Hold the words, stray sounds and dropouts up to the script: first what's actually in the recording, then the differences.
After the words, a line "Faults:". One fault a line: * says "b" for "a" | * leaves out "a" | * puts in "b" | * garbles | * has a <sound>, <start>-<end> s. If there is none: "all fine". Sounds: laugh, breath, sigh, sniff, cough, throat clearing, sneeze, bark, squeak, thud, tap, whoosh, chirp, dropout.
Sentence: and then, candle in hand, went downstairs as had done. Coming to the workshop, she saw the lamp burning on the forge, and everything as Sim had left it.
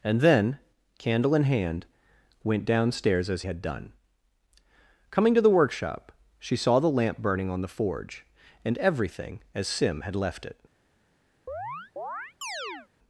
and then, candle in hand, went downstairs as had done. Coming to the workshop, she saw the lamp burning on the forge, and everything as Sim had left it.
Faults:
* has a chirp, 11.5-12.9 s